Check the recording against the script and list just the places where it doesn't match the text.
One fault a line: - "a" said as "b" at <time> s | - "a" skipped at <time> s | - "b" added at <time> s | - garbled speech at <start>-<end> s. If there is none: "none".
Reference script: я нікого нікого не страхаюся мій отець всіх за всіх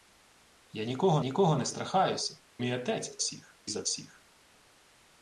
none